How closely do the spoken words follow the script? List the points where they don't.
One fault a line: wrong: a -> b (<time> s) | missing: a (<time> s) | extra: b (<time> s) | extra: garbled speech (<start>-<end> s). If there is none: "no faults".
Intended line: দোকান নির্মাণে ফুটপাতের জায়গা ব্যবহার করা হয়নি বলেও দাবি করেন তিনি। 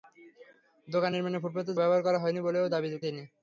missing: জায়গা (1.8 s)
missing: করেন (2.9 s)